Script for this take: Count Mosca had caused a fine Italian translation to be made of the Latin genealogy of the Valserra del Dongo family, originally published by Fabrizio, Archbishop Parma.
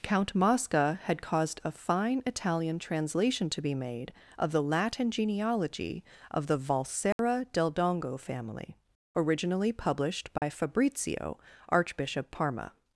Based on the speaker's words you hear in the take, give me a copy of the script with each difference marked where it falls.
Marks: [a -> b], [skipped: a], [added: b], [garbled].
Count Mosca had caused a fine Italian translation to be made of the Latin genealogy of the Valserra del Dongo family, originally published by Fabrizio, Archbishop Parma.